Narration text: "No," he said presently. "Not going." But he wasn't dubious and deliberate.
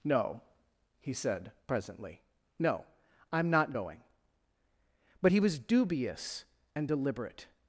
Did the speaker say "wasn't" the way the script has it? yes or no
no